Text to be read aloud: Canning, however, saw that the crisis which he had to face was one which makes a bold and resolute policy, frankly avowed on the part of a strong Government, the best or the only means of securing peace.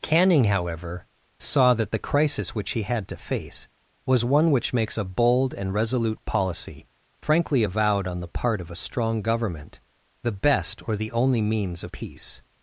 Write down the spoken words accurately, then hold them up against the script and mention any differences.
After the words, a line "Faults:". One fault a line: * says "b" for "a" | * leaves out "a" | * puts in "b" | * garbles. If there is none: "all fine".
Canning, however, saw that the crisis which he had to face was one which makes a bold and resolute policy, frankly avowed on the part of a strong Government, the best or the only means of peace.
Faults:
* leaves out "securing"